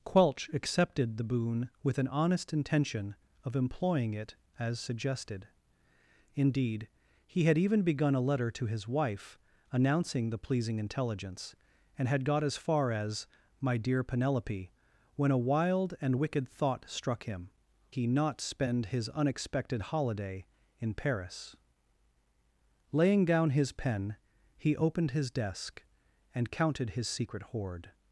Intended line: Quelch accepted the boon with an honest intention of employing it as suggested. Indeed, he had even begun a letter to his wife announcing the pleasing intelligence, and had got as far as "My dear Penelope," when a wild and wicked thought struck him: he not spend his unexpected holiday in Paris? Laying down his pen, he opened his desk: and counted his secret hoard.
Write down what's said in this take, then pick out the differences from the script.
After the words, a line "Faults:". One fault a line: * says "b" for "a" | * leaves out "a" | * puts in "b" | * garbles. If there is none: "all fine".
Quelch accepted the boon with an honest intention of employing it as suggested. Indeed, he had even begun a letter to his wife announcing the pleasing intelligence, and had got as far as "My dear Penelope," when a wild and wicked thought struck him: he not spend his unexpected holiday in Paris? Laying down his pen, he opened his desk: and counted his secret hoard.
Faults:
all fine